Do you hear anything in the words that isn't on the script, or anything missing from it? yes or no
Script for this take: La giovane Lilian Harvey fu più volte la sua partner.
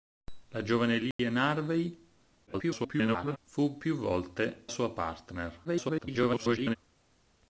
yes